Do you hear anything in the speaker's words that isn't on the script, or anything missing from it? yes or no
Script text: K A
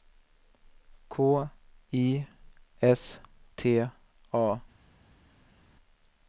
yes